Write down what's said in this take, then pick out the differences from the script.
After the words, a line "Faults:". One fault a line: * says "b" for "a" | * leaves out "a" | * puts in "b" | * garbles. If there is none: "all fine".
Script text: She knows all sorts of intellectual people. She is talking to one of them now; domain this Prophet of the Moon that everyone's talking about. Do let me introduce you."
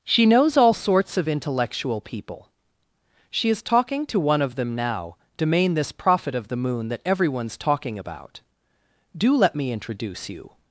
She knows all sorts of intellectual people. She is talking to one of them now; domain this Prophet of the Moon that everyone's talking about. Do let me introduce you."
Faults:
all fine